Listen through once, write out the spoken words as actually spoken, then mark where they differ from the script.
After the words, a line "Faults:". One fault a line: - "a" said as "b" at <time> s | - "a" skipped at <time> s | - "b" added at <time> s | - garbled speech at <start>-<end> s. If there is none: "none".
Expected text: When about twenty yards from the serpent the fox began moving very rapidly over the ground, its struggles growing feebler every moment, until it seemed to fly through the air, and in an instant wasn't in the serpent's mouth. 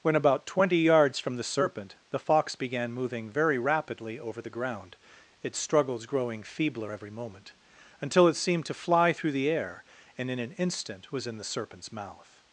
When about twenty yards from the serpent the fox began moving very rapidly over the ground, its struggles growing feebler every moment, until it seemed to fly through the air, and in an instant was in the serpent's mouth.
Faults:
- "wasn't" said as "was" at 11.1 s